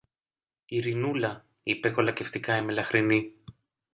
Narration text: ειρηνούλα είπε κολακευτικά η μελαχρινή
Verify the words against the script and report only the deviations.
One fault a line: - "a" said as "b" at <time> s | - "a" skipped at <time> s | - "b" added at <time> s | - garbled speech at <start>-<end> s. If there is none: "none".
none